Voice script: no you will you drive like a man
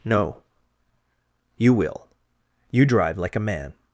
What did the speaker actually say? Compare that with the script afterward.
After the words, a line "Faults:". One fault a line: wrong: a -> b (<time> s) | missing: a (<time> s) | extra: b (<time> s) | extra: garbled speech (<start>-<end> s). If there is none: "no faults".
no you will you drive like a man
Faults:
no faults